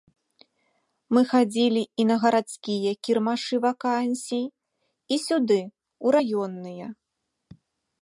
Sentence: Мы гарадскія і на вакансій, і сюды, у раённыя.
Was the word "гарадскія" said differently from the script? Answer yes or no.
yes